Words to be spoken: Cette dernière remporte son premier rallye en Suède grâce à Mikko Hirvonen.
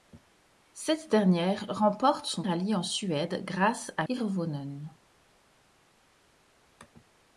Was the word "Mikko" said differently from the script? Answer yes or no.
yes